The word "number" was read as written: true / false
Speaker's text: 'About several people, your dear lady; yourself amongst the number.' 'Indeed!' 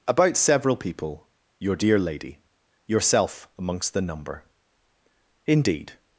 true